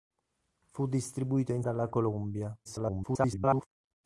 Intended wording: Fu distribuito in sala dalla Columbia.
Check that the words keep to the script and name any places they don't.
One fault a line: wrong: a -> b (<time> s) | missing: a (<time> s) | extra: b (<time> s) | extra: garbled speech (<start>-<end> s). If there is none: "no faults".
missing: sala (1.6 s)
extra: garbled speech (2.6-3.7 s)